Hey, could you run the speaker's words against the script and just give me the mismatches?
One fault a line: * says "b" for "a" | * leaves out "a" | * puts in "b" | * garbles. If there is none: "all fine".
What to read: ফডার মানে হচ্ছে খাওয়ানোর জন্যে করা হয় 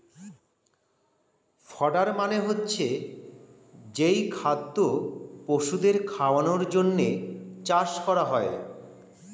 * puts in "যেই খাদ্য পশুদের"
* puts in "চাষ"